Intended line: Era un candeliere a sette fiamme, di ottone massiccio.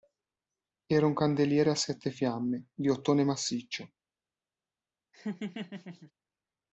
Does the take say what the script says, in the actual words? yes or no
yes